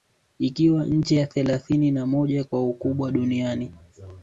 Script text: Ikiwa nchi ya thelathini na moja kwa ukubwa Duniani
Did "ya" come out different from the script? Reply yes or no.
no